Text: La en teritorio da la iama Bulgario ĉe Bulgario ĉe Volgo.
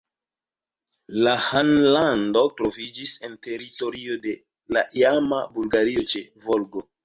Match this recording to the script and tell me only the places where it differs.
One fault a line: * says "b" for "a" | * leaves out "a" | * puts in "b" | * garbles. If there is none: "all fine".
* puts in "ĥanlando troviĝis"
* says "de" for "da"
* leaves out "Bulgario ĉe"